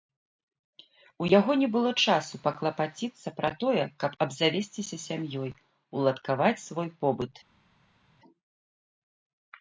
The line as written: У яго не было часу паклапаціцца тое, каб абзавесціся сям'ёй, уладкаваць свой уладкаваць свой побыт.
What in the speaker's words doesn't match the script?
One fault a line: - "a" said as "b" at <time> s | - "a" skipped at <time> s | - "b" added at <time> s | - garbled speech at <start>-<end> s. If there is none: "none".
- "пра" added at 3.4 s
- "уладкаваць свой" skipped at 6.9 s